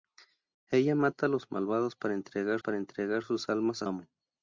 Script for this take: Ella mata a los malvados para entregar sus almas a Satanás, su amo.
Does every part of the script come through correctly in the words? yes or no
no